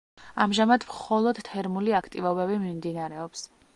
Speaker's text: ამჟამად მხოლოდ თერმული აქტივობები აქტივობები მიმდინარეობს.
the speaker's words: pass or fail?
fail